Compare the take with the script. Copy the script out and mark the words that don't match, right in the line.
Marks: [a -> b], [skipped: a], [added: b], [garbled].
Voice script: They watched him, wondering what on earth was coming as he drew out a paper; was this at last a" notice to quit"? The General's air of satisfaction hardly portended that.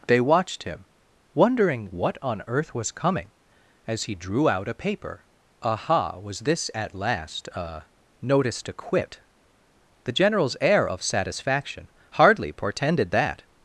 They watched him, wondering what on earth was coming as he drew out a paper; [added: aha] was this at last a" notice to quit"? The General's air of satisfaction hardly portended that.